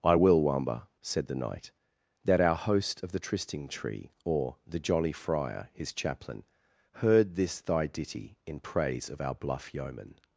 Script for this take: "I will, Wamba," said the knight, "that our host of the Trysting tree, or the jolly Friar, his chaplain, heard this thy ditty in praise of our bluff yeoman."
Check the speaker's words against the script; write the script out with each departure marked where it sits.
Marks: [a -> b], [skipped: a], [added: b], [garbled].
"I will, Wamba," said the knight, "that our host of the Trysting tree, or the jolly Friar, his chaplain, heard this thy ditty in praise of our bluff yeoman."